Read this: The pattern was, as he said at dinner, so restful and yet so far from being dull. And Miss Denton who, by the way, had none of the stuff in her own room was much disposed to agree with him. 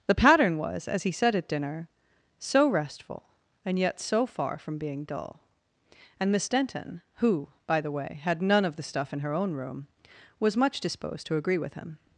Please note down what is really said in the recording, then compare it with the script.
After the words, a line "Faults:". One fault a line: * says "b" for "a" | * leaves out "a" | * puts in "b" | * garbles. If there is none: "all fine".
The pattern was, as he said at dinner, so restful and yet so far from being dull. And Miss Denton who, by the way, had none of the stuff in her own room was much disposed to agree with him.
Faults:
all fine